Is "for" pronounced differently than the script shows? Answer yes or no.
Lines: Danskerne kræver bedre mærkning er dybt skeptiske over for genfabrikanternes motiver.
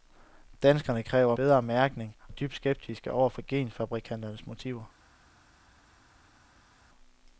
no